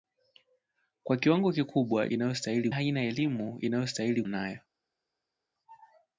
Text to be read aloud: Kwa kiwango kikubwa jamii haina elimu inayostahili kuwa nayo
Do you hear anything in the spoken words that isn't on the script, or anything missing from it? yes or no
yes